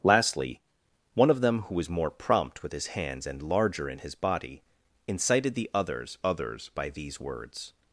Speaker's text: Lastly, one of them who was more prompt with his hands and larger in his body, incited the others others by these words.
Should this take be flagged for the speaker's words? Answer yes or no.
no